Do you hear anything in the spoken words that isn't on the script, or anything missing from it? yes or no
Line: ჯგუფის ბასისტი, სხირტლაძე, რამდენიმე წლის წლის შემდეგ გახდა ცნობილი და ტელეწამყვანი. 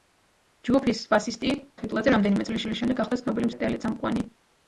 no